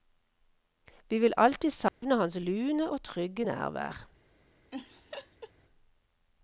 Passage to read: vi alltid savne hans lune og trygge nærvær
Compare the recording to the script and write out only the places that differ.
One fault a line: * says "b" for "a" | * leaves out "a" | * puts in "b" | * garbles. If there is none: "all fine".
* puts in "vil"